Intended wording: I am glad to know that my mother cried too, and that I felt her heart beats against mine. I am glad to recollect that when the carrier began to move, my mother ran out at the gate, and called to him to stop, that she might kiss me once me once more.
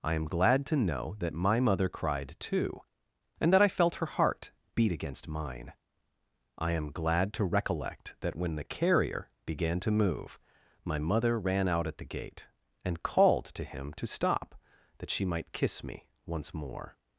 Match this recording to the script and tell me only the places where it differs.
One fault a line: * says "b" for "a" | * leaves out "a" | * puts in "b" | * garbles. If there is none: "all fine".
* says "beat" for "beats"
* leaves out "me once"